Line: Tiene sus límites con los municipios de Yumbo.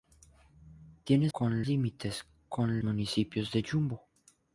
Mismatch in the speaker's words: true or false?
true